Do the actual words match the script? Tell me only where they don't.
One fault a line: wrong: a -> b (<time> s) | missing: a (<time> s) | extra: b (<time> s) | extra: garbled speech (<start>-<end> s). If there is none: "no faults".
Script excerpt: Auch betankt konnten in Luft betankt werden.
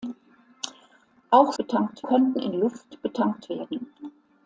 no faults